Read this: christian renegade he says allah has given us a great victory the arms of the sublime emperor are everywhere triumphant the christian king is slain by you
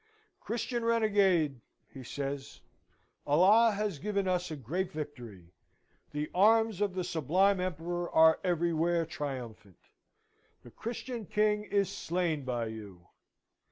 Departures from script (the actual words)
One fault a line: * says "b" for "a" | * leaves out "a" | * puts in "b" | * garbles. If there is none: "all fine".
all fine